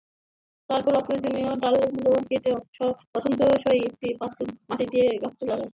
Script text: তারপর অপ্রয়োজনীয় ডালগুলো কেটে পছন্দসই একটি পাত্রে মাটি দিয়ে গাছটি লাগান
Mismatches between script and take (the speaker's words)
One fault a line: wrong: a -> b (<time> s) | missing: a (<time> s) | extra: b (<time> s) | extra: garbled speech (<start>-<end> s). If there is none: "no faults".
no faults